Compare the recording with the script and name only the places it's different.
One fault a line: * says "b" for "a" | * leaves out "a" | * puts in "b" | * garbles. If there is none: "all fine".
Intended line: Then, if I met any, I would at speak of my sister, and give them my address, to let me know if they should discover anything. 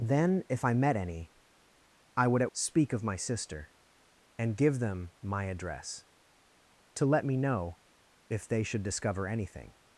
all fine